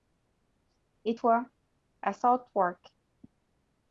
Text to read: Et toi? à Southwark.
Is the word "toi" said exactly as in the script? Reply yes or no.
yes